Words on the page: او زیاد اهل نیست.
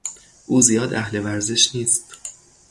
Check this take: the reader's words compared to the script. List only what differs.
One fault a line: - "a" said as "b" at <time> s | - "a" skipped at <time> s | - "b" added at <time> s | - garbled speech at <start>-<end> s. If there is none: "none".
- "ورزش" added at 1.2 s